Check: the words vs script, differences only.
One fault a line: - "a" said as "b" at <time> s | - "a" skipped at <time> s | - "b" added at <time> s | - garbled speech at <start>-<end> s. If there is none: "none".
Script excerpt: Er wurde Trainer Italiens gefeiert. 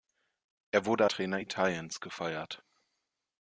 none